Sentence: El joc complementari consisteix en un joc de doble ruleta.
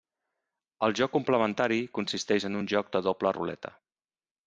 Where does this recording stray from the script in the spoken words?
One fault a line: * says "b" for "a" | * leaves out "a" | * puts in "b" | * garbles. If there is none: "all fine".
all fine